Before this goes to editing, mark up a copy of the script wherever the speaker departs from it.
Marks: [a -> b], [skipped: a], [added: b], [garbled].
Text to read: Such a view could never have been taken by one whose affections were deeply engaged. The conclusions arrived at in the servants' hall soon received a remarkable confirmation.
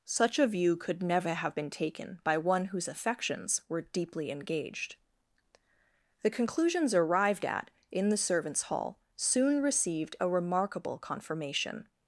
Such a view could never have been taken by one whose affections were deeply engaged. The conclusions arrived at in the servants' hall soon received a remarkable confirmation.